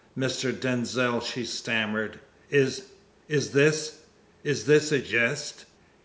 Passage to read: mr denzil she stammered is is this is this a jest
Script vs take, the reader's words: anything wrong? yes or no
no